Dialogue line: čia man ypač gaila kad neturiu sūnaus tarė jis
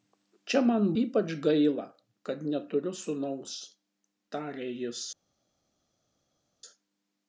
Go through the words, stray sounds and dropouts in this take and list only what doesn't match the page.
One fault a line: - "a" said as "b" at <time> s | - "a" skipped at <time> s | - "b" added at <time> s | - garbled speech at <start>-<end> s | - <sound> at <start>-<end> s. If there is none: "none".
none